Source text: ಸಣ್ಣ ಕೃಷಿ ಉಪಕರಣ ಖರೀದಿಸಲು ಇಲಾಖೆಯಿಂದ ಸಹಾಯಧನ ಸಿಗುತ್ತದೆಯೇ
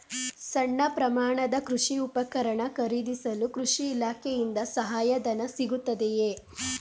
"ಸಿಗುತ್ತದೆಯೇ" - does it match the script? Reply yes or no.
yes